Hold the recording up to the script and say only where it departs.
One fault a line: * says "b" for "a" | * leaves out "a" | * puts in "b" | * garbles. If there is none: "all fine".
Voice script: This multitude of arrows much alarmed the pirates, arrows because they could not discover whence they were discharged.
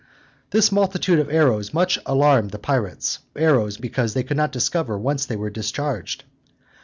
all fine